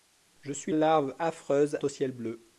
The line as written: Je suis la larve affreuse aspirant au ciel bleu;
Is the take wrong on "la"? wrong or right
wrong